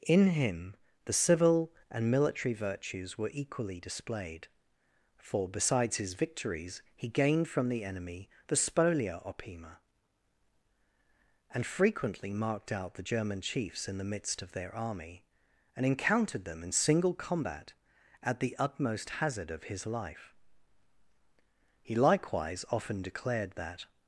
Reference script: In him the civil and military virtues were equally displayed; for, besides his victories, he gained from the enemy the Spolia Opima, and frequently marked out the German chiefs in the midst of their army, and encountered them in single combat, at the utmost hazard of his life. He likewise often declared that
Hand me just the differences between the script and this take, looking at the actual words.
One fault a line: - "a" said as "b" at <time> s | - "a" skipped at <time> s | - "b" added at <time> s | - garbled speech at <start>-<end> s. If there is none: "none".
none